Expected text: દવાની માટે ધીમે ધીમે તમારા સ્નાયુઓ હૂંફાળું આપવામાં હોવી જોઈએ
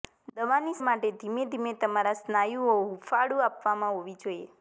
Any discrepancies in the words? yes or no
no